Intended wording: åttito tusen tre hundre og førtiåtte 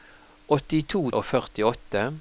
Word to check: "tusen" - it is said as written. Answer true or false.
false